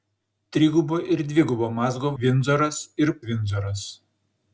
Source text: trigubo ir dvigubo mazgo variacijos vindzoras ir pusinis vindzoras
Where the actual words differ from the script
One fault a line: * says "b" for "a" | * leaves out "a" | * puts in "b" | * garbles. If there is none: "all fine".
* leaves out "variacijos"
* leaves out "pusinis"